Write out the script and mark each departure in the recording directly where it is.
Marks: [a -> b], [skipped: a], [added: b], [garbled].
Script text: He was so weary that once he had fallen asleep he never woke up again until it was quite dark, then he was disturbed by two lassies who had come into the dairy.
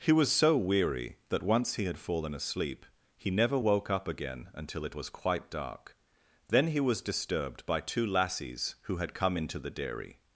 He was so weary that once he had fallen asleep he never woke up again until it was quite dark, then he was disturbed by two lassies who had come into the dairy.